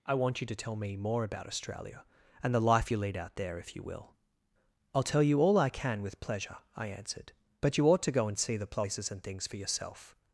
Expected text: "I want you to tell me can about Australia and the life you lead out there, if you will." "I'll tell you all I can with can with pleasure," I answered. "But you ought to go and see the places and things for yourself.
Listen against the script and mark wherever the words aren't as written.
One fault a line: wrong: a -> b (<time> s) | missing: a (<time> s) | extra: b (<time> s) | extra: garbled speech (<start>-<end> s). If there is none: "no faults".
wrong: can -> more (1.0 s)
missing: can with (6.2 s)